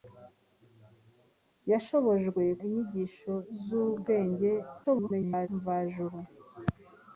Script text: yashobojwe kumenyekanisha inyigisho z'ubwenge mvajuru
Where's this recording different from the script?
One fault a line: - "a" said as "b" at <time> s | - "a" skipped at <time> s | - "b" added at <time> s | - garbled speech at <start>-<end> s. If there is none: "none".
- "kumenyekanisha" skipped at 2.4 s
- garbled speech at 4.8-5.5 s